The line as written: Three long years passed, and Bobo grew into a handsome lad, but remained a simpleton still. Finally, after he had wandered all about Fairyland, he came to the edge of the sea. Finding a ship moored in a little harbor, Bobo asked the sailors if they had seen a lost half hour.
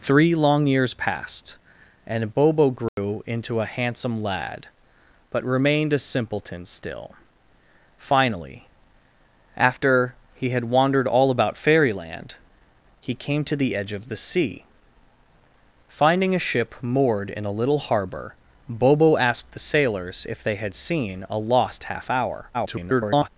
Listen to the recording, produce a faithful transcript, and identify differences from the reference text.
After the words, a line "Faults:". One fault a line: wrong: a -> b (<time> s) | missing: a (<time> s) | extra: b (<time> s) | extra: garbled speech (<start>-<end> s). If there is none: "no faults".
Three long years passed, and Bobo grew into a handsome lad, but remained a simpleton still. Finally, after he had wandered all about Fairyland, he came to the edge of the sea. Finding a ship moored in a little harbor, Bobo asked the sailors if they had seen a lost half hour. [garbled]
Faults:
extra: garbled speech (22.5-23.3 s)